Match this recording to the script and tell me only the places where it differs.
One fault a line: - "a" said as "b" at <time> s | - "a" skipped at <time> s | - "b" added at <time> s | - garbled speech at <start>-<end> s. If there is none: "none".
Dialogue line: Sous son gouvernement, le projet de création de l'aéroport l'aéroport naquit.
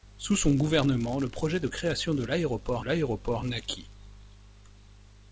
none